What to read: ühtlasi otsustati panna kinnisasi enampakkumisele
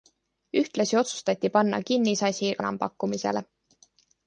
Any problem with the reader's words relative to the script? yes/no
no